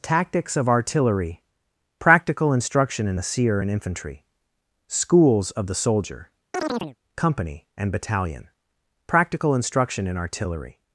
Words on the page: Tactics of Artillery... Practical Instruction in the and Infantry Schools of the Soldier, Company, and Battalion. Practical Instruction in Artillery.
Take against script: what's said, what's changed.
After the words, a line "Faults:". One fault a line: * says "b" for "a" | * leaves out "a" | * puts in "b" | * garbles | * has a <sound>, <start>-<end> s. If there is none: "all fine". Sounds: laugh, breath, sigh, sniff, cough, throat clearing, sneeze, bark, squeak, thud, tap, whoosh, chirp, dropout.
Tactics of Artillery... Practical Instruction in the seer and Infantry Schools of the Soldier, Company, and Battalion. Practical Instruction in Artillery.
Faults:
* puts in "seer"
* has a chirp, 6.5-7.0 s